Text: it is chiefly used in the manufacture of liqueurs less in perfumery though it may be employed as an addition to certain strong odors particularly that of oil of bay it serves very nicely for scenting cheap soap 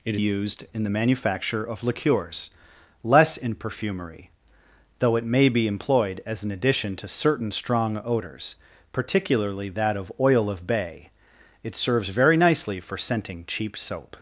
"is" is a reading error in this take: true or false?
true